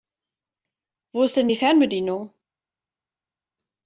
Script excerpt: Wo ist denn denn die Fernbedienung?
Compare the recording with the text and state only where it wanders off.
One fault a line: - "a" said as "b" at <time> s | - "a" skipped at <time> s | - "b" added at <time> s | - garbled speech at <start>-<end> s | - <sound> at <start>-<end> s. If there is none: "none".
- "denn" skipped at 1.5 s